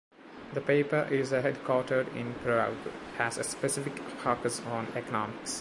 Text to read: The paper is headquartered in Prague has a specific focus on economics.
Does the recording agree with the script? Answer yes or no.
yes